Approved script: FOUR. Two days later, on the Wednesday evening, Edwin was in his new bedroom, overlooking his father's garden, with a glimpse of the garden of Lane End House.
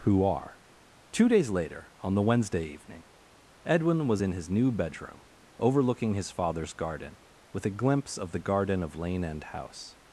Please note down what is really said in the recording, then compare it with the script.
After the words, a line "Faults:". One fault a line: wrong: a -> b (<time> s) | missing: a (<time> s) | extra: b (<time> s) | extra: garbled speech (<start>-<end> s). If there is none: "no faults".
Who are. Two days later, on the Wednesday evening, Edwin was in his new bedroom, overlooking his father's garden, with a glimpse of the garden of Lane End House.
Faults:
wrong: FOUR -> Who are (0.0 s)